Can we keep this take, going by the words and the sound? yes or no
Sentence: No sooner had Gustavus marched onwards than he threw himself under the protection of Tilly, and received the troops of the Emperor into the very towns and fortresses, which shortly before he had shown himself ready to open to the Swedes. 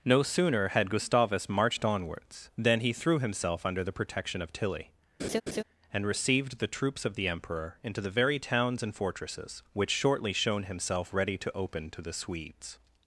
no